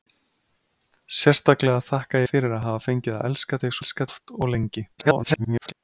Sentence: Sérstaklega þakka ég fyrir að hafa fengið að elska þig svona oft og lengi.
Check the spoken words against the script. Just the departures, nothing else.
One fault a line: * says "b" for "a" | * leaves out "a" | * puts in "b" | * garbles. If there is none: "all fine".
* leaves out "ég"
* says "elska" for "svona"
* garbles